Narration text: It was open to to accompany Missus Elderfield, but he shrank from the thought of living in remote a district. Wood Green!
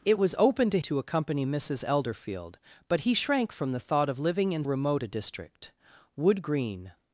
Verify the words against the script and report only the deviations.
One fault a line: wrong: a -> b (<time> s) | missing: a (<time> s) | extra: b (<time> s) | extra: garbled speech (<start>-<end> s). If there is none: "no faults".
no faults